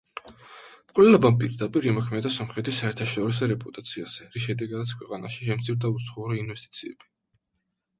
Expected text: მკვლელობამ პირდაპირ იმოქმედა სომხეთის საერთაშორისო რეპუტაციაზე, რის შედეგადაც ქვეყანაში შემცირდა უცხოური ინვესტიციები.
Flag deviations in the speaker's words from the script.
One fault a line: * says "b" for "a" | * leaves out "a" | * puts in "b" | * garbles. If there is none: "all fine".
all fine